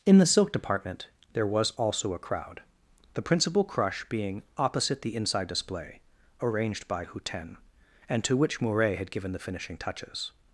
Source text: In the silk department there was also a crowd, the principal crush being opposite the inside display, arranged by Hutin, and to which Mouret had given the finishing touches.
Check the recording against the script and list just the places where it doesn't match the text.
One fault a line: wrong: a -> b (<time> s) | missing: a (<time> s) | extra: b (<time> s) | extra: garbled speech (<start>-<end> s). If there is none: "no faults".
no faults